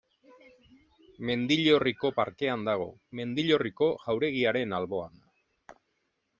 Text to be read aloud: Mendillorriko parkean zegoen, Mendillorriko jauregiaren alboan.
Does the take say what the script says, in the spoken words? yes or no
no